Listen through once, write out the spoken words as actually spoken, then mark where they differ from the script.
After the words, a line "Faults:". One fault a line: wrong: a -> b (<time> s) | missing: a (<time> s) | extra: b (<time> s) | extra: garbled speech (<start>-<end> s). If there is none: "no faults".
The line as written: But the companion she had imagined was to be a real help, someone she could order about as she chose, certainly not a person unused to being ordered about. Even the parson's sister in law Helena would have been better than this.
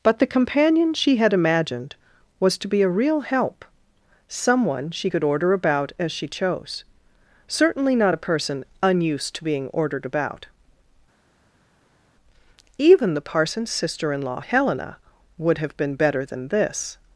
But the companion she had imagined was to be a real help, someone she could order about as she chose, certainly not a person unused to being ordered about. Even the parson's sister in law Helena would have been better than this.
Faults:
no faults